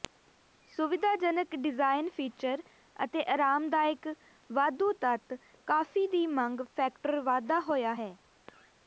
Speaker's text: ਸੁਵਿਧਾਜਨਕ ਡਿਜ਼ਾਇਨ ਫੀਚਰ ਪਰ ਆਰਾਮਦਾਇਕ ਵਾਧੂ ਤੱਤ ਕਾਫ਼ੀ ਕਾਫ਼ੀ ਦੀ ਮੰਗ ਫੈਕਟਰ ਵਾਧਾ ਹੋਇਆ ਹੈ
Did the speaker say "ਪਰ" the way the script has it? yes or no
no